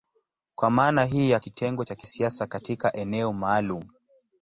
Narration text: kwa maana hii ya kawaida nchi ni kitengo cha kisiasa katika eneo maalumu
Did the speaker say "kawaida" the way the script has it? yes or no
no